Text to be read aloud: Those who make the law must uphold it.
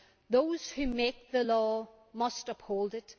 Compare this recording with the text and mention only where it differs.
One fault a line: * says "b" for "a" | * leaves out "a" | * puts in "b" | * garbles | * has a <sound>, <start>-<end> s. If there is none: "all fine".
all fine